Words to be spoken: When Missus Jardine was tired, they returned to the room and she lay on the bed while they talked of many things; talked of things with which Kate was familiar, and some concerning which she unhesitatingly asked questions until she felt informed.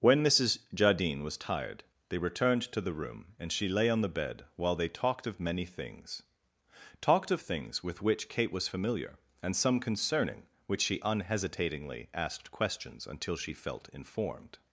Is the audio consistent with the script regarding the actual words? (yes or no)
yes